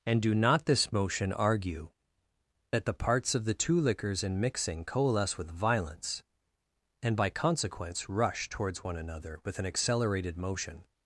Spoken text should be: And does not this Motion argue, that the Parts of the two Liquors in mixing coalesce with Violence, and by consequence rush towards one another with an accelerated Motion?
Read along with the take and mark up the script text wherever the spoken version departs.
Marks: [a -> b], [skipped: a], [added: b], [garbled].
And [does -> do] not this Motion argue, that the Parts of the two Liquors in mixing coalesce with Violence, and by consequence rush towards one another with an accelerated Motion?